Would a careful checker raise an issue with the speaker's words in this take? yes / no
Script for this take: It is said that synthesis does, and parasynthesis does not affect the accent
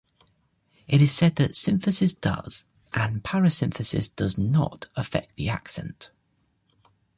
no